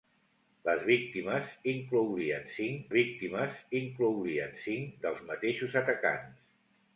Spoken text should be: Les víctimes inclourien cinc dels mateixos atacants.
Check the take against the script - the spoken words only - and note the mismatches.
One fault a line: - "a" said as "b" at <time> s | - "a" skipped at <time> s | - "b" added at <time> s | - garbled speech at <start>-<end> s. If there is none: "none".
- "víctimes inclourien cinc" added at 2.9 s